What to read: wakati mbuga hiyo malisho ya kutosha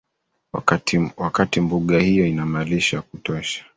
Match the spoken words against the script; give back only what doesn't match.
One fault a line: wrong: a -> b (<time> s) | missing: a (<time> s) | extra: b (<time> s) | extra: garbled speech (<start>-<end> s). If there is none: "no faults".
extra: ina (2.2 s)